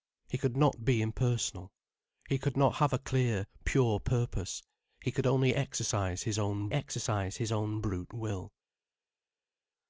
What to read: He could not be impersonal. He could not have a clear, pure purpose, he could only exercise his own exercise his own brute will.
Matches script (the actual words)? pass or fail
pass